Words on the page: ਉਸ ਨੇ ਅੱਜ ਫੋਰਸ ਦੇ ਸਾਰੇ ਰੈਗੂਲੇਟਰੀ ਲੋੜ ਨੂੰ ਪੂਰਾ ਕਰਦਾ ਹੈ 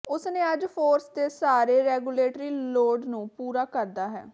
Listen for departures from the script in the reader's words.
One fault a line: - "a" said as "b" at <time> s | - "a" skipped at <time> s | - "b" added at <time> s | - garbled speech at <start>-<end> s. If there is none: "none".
none